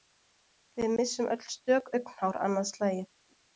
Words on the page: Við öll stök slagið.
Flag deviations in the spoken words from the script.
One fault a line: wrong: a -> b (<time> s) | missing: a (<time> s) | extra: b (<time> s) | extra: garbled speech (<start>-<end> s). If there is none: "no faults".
extra: missum (1.0 s)
extra: augnhár annað (2.0 s)